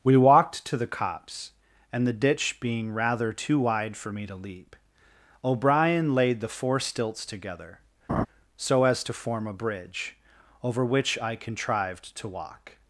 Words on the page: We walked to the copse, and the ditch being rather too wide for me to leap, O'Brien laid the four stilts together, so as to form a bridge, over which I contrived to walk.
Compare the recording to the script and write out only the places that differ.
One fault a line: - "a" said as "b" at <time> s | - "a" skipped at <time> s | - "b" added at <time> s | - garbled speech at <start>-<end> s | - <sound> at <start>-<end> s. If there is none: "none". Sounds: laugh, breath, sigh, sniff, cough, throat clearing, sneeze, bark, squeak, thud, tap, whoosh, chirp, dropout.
- laugh at 8.1-8.3 s